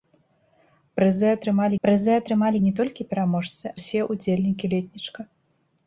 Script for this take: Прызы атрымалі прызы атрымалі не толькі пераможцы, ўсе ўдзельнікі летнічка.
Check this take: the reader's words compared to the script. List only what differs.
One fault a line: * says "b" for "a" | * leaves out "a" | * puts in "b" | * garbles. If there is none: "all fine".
all fine